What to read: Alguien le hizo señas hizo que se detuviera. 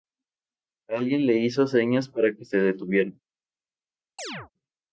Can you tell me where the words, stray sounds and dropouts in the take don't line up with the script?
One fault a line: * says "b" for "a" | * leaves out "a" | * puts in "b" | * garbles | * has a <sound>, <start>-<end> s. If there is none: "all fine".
* says "para" for "hizo"
* has a chirp, 4.2-4.5 s